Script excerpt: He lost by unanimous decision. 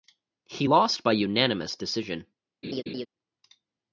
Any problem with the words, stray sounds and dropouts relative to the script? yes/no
yes